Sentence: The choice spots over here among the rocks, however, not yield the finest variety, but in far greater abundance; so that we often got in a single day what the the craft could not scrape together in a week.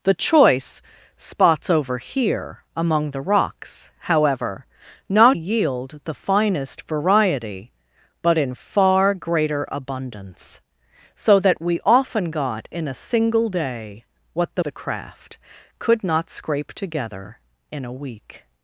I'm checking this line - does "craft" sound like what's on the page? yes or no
yes